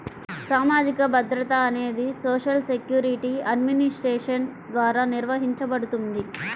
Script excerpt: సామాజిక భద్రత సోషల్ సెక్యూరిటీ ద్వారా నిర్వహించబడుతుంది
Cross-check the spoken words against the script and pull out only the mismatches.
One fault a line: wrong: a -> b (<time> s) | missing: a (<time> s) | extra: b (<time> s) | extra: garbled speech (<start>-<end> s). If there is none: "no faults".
extra: అనేది (1.6 s)
extra: అడ్మినిస్ట్రేషన్ (3.5 s)